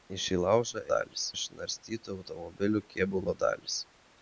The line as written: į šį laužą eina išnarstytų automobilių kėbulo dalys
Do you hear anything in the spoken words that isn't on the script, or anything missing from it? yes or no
yes